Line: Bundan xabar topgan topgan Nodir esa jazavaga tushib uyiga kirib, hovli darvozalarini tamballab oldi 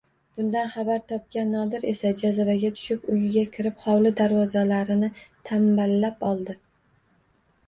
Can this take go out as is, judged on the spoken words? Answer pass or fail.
fail